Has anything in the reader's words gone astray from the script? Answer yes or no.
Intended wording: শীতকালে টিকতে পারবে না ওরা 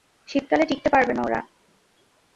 no